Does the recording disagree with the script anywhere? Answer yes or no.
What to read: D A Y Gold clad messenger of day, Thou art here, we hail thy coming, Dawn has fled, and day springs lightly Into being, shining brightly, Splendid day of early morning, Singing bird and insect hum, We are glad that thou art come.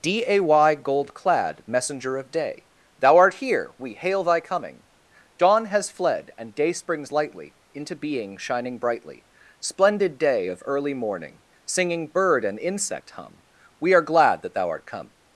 no